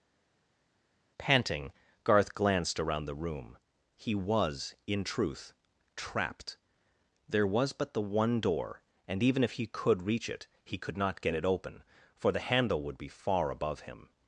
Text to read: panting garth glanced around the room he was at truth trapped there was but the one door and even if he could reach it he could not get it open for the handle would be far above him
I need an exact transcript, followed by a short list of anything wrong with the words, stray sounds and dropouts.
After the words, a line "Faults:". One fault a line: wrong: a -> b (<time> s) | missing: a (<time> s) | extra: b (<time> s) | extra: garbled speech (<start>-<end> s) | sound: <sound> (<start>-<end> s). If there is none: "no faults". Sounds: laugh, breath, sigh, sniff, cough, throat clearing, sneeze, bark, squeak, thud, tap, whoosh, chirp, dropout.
panting garth glanced around the room he was in truth trapped there was but the one door and even if he could reach it he could not get it open for the handle would be far above him
Faults:
wrong: at -> in (4.9 s)